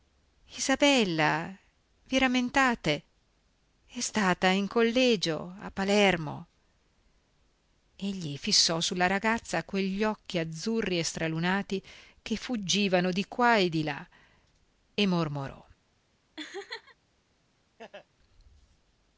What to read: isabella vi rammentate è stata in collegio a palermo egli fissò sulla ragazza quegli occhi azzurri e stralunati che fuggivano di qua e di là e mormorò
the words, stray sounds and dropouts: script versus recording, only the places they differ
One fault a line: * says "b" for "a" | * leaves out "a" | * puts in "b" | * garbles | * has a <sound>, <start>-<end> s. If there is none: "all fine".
* has a laugh, 16.4-17.0 s
* has a laugh, 17.8-18.1 s